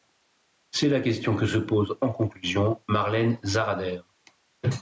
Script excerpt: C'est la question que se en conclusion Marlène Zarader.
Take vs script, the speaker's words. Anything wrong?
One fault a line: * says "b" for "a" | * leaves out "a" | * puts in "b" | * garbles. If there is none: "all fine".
* puts in "pose"